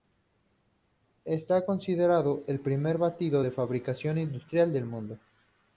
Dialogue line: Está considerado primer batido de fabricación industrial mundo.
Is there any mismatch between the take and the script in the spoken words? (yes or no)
yes